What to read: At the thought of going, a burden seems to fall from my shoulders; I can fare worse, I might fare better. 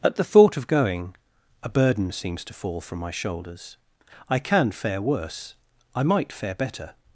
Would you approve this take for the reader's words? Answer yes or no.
yes